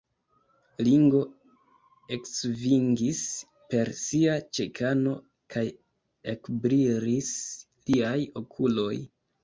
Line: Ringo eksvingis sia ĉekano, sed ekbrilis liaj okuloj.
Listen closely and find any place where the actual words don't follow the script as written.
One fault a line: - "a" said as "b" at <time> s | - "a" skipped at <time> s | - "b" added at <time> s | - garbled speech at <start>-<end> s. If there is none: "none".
- "per" added at 3.8 s
- "sed" said as "kaj" at 5.6 s